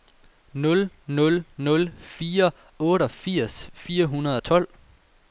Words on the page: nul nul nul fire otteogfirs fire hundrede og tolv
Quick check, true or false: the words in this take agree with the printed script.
true